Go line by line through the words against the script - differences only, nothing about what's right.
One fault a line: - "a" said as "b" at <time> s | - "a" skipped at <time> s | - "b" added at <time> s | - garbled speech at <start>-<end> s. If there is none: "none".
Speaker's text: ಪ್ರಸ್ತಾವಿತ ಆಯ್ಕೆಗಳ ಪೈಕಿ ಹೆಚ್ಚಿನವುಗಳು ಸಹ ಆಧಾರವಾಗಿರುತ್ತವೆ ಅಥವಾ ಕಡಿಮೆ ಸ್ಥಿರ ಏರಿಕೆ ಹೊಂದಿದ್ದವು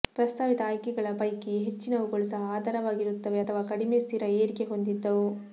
none